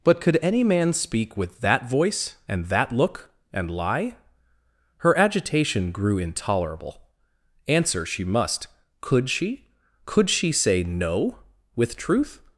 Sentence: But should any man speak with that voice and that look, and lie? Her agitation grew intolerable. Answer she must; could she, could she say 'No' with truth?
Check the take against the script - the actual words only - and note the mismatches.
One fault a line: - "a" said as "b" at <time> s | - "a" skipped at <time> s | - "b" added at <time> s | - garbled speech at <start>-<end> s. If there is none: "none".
- "should" said as "could" at 0.2 s